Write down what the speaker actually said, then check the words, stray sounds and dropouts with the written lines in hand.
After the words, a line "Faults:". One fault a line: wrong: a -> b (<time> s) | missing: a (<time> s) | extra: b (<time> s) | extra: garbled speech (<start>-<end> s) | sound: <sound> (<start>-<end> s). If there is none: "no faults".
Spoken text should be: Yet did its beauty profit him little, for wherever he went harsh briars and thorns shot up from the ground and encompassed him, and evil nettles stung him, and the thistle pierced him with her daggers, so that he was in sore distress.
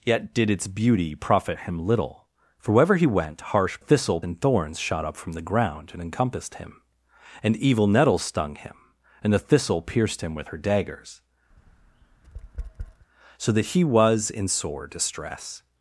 Yet did its beauty profit him little, for wherever he went harsh thistle and thorns shot up from the ground and encompassed him, and evil nettles stung him, and the thistle pierced him with her daggers, so that he was in sore distress.
Faults:
wrong: briars -> thistle (3.8 s)
sound: tap (11.5-13.1 s)